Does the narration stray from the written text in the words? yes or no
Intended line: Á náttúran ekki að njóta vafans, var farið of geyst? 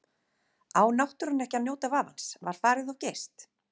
no